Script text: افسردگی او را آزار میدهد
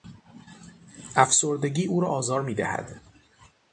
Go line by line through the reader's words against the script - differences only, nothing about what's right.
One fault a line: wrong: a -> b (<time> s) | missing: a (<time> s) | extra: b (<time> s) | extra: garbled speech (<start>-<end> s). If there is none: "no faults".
no faults